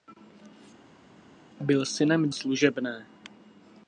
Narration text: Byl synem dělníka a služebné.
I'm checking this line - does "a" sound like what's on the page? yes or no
no